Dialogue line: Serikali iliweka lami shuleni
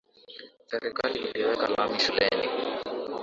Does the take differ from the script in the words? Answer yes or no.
no